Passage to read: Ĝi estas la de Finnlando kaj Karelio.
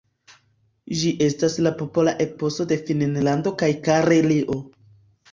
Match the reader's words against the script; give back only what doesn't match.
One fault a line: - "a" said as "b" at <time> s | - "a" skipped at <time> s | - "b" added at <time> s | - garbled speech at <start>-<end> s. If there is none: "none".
- "popola eposo" added at 1.8 s